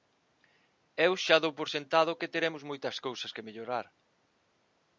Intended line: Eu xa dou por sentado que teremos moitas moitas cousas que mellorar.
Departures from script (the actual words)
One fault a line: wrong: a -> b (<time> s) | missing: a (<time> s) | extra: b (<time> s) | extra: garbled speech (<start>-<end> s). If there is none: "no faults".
missing: moitas (3.0 s)